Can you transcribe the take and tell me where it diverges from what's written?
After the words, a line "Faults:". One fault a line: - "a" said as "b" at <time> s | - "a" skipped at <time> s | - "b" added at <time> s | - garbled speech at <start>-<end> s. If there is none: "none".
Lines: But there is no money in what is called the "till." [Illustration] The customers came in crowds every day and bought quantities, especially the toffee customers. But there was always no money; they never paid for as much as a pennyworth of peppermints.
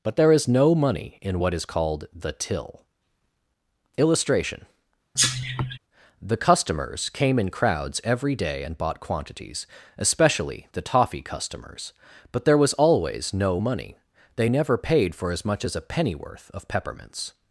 But there is no money in what is called the "till." [Illustration] The customers came in crowds every day and bought quantities, especially the toffee customers. But there was always no money; they never paid for as much as a pennyworth of peppermints.
Faults:
none